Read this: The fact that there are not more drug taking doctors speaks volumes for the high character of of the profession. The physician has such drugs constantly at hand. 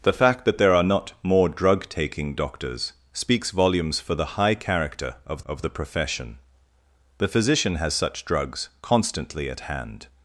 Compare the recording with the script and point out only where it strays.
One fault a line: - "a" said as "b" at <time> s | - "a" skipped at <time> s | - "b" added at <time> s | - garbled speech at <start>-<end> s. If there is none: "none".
none